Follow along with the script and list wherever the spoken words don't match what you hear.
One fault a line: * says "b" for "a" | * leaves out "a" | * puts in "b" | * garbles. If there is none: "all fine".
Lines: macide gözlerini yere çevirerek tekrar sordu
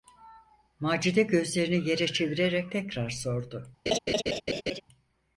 all fine